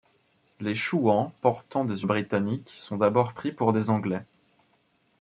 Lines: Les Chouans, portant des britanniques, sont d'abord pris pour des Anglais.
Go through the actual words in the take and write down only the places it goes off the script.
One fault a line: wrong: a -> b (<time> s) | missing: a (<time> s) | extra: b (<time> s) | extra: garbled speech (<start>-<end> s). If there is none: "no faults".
no faults